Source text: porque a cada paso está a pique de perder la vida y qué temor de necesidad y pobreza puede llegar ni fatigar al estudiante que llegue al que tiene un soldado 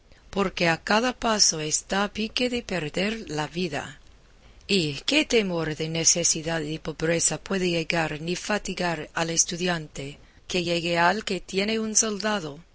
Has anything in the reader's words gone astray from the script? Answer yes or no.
no